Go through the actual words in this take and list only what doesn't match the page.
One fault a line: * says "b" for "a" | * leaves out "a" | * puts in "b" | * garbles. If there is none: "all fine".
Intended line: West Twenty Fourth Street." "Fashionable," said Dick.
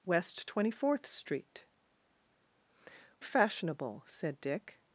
all fine